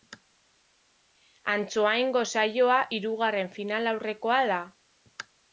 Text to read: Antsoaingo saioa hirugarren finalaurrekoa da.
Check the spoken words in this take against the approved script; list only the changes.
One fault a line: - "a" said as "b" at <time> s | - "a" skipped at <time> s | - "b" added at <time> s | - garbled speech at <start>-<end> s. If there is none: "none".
none